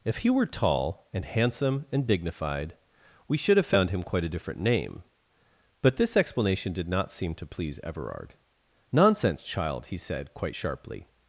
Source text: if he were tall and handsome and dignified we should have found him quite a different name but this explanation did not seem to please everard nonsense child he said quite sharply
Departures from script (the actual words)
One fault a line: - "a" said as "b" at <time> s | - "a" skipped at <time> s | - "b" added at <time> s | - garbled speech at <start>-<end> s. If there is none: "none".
none